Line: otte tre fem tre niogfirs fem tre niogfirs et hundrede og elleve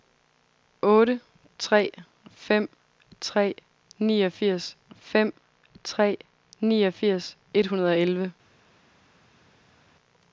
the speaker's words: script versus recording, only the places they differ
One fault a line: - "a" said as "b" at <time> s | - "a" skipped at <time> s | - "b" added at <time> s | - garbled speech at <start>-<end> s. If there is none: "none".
none